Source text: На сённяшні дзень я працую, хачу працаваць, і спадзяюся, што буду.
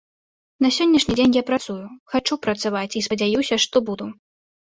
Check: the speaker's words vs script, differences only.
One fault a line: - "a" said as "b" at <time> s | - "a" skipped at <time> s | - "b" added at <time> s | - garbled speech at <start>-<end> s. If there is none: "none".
none